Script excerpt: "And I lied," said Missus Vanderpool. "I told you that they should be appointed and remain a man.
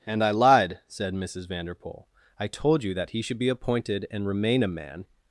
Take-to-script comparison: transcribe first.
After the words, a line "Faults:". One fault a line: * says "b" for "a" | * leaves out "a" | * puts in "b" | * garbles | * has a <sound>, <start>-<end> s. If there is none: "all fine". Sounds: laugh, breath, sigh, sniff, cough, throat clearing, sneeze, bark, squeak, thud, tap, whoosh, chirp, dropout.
"And I lied," said Missus Vanderpool. "I told you that he should be appointed and remain a man.
Faults:
* says "he" for "they"